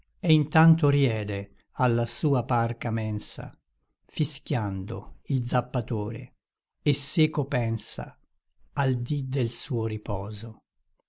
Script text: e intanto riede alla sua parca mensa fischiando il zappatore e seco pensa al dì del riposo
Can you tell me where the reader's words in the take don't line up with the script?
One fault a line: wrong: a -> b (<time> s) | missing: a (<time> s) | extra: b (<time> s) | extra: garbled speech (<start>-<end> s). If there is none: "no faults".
extra: suo (9.5 s)